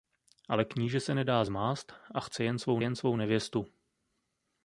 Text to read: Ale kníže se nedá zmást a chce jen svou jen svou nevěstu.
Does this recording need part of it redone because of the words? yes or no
no